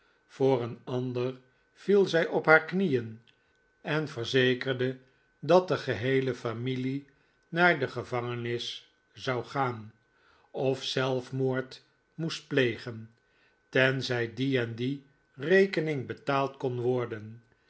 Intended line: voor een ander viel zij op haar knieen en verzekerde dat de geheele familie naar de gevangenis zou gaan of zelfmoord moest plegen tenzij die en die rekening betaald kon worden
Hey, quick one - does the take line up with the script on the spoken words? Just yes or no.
yes